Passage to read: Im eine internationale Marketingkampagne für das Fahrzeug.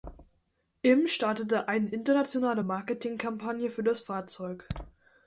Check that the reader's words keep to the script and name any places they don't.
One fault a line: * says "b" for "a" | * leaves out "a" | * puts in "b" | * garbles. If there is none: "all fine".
* puts in "startete"